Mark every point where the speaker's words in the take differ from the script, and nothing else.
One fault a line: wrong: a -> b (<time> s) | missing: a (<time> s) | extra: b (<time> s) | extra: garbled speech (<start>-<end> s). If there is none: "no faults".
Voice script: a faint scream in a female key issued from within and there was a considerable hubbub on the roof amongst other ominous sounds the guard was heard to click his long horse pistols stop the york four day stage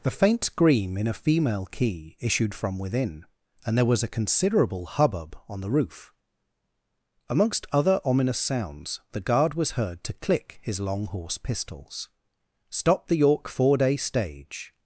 wrong: a -> the (0.0 s)